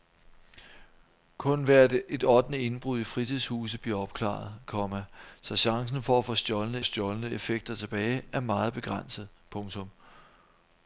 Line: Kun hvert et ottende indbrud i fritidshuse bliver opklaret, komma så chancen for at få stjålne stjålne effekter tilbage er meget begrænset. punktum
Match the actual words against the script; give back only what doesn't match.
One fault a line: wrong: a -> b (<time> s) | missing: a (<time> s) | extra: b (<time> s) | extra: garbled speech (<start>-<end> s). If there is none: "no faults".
no faults